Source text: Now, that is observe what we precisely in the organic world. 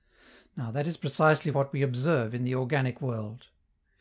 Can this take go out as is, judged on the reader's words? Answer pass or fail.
fail